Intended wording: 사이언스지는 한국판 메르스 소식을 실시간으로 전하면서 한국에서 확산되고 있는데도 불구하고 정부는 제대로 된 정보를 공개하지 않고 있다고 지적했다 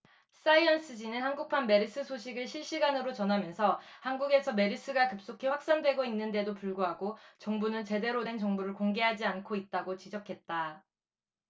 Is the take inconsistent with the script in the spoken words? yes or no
yes